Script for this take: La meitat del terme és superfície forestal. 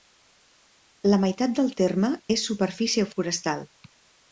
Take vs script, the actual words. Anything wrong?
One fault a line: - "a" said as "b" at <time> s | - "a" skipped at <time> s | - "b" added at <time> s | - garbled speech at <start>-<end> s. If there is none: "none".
none